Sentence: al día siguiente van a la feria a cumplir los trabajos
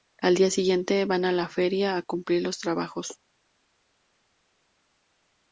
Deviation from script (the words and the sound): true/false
false